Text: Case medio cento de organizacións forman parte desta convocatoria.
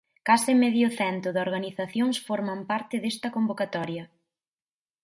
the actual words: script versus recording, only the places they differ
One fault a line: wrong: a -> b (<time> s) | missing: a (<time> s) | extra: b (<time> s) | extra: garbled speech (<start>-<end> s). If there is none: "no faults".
no faults